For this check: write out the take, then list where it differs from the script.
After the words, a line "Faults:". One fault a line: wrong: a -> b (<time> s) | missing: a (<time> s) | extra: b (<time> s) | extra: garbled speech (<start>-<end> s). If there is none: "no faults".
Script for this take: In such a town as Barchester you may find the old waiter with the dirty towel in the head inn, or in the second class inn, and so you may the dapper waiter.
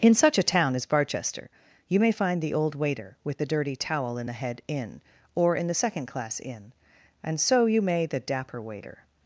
In such a town as Barchester you may find the old waiter with the dirty towel in the head inn, or in the second class inn, and so you may the dapper waiter.
Faults:
no faults